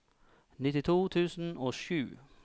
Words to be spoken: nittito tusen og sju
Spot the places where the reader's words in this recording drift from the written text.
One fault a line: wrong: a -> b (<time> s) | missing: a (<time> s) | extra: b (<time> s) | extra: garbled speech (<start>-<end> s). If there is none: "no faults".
no faults